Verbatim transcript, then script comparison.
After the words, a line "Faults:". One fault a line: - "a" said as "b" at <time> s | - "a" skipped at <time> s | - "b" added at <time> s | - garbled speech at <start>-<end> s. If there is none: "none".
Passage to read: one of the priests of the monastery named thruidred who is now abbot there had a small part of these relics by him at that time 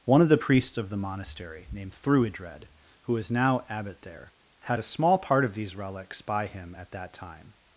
one of the priests of the monastery named thruidred who is now abbot there had a small part of these relics by him at that time
Faults:
none